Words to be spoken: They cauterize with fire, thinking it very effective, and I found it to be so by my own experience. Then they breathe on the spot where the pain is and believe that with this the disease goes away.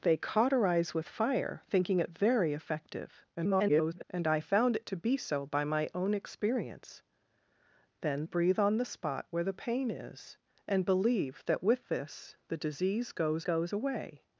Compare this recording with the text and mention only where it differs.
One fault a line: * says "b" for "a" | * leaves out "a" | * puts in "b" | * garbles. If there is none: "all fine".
* garbles
* leaves out "they"
* puts in "goes"